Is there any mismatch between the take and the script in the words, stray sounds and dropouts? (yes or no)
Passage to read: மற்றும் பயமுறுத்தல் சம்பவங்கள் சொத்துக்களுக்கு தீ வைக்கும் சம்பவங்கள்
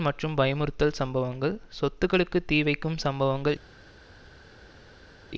no